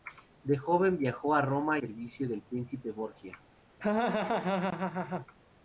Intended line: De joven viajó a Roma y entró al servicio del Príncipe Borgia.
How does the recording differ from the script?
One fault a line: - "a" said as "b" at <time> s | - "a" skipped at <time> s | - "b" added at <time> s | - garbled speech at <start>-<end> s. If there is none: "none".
- "y entró al" skipped at 1.8 s